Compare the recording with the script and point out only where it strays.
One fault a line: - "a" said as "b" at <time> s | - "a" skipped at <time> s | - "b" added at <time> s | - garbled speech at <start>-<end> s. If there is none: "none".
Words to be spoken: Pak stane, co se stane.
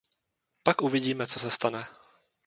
- "stane" said as "uvidíme" at 0.8 s